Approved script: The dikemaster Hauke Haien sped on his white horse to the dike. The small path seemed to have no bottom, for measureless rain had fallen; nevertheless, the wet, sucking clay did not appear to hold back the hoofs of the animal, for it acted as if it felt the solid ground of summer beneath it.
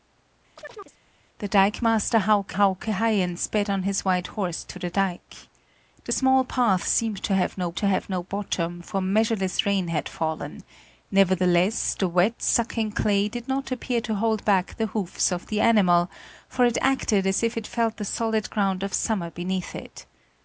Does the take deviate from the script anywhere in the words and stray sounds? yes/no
yes